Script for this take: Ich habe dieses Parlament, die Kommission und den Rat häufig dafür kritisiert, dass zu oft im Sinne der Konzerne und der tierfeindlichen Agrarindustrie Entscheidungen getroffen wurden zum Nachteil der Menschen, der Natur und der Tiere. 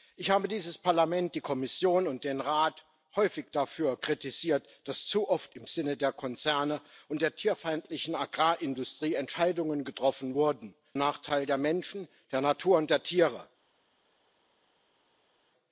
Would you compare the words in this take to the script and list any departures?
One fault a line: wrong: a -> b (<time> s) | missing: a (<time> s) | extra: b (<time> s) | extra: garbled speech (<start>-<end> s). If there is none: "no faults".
missing: zum (10.7 s)